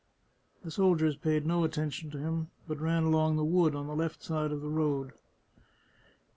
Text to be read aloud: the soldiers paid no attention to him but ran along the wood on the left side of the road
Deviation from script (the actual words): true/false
false